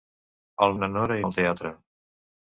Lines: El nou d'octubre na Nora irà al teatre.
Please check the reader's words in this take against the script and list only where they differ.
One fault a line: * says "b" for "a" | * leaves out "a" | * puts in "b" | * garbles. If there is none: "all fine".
* leaves out "nou d'octubre"
* leaves out "irà"